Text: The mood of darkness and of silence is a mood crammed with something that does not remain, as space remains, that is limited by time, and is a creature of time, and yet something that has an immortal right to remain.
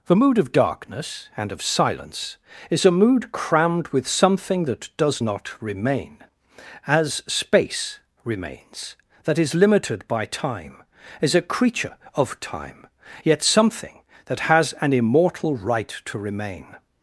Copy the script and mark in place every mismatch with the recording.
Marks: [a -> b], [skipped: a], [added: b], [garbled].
The mood of darkness and of silence is a mood crammed with something that does not remain, as space remains, that is limited by time, [skipped: and] is a creature of time, [skipped: and] yet something that has an immortal right to remain.